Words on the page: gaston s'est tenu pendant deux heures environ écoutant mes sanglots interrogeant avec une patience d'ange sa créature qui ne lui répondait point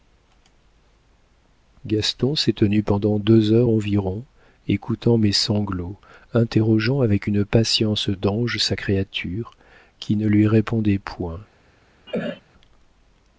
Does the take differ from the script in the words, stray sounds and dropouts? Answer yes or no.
yes